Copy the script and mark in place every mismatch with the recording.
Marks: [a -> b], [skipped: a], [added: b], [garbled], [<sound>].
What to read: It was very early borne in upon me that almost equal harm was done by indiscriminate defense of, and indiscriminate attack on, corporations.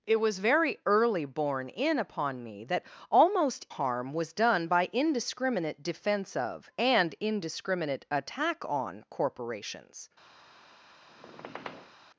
It was very early borne in upon me that almost [skipped: equal] harm was done by indiscriminate defense of, and indiscriminate attack on, corporations. [squeak]